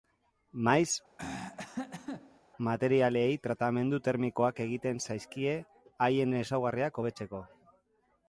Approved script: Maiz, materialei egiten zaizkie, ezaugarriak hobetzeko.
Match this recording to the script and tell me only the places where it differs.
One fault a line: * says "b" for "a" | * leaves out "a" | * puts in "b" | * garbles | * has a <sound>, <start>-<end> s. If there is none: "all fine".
* has a throat clearing, 1.2-2.4 s
* puts in "tratamendu termikoak"
* puts in "haien"